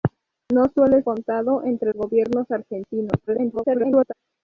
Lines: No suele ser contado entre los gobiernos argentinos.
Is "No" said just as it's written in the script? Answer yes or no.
yes